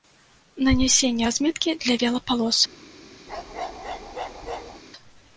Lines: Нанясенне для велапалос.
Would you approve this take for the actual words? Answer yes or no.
no